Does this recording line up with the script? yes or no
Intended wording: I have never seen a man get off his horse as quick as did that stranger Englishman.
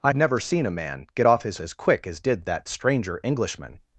no